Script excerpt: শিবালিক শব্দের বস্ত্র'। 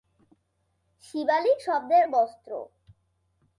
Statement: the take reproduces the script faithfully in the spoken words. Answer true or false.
true